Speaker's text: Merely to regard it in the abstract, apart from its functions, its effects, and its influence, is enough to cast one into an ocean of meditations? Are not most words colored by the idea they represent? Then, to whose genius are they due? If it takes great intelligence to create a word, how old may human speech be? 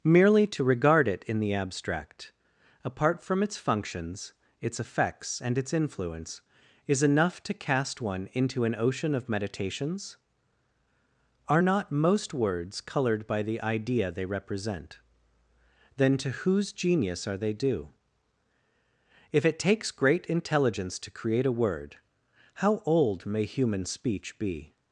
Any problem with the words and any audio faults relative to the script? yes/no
no